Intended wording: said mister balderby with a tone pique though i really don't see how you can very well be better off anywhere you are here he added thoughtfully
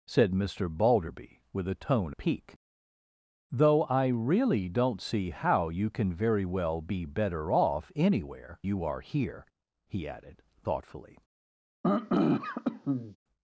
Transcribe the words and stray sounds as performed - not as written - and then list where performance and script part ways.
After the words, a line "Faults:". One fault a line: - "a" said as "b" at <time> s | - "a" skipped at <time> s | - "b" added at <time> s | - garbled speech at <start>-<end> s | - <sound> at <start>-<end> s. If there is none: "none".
said mister balderby with a tone pique though i really don't see how you can very well be better off anywhere you are here he added thoughtfully
Faults:
- throat clearing at 11.8-13.2 s